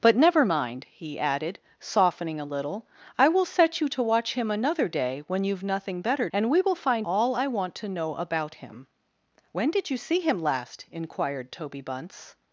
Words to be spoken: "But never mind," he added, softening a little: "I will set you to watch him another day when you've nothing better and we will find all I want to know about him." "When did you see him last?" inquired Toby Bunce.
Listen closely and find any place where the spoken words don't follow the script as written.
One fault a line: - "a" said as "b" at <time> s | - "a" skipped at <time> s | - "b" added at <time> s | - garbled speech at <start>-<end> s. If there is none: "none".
none